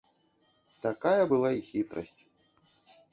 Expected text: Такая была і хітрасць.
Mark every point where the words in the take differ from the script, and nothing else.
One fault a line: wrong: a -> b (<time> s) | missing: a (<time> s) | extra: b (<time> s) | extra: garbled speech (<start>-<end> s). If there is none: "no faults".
no faults